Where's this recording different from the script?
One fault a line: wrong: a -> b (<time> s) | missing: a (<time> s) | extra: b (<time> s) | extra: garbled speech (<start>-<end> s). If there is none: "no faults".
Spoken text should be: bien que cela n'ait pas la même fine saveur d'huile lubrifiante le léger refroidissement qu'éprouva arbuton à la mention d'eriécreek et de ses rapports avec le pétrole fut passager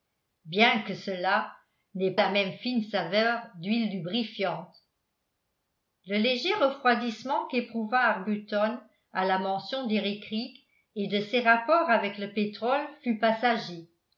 missing: pas (2.2 s)